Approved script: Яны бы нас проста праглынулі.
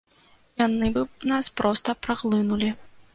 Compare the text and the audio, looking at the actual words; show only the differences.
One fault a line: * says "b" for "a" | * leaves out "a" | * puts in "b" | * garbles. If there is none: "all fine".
all fine